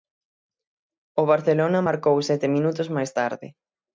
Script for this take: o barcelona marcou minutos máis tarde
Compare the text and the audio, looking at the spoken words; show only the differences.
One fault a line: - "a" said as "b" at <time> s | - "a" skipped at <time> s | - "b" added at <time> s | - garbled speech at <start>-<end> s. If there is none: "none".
- "sete" added at 2.3 s